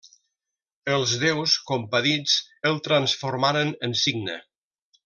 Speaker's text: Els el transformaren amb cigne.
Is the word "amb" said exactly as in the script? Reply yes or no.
no